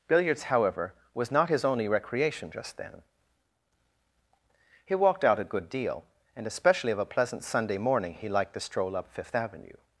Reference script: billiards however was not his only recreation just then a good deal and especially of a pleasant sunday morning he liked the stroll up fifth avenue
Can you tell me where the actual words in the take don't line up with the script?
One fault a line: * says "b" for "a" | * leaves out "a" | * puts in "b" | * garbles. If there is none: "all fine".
* puts in "he walked out"